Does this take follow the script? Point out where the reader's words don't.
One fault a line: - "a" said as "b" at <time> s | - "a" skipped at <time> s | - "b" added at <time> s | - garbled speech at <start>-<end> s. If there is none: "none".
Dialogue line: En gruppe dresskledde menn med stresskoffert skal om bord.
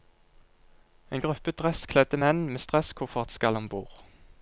none